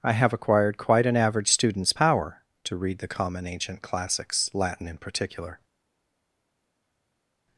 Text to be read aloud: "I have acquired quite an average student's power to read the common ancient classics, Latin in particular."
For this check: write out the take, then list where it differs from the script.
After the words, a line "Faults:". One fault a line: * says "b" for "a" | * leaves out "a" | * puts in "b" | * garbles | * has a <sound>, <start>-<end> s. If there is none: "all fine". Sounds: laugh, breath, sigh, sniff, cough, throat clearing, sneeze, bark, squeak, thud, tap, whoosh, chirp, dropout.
"I have acquired quite an average student's power to read the common ancient classics, Latin in particular."
Faults:
all fine